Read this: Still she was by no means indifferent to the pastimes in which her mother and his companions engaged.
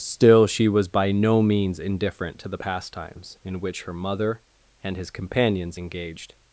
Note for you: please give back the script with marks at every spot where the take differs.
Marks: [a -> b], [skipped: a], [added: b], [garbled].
Still she was by no means indifferent to the pastimes in which her mother and his companions engaged.